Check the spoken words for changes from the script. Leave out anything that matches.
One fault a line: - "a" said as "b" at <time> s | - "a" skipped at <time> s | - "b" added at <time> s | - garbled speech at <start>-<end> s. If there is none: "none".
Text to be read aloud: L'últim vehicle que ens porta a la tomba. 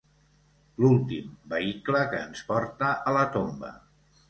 none